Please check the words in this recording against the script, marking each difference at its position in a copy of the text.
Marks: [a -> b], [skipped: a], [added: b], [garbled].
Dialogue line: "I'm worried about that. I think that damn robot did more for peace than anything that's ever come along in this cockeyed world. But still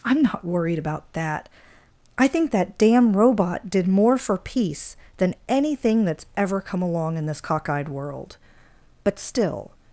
"I'm [added: not] worried about that. I think that damn robot did more for peace than anything that's ever come along in this cockeyed world. But still